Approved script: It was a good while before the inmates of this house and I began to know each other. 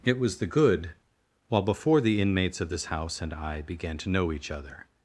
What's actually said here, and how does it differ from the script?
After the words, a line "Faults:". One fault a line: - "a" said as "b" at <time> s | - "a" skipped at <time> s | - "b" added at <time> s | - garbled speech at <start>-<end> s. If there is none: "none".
It was the good while before the inmates of this house and I began to know each other.
Faults:
- "a" said as "the" at 0.4 s